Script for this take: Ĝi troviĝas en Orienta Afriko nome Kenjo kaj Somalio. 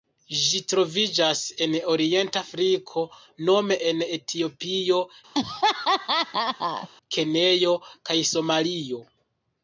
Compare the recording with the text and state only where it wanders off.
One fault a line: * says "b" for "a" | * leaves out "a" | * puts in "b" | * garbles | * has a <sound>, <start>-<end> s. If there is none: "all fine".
* puts in "en Etiopio"
* has a laugh, 5.3-6.9 s